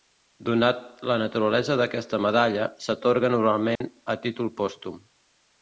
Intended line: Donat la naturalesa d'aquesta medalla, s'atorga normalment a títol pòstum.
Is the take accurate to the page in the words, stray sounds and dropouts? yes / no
no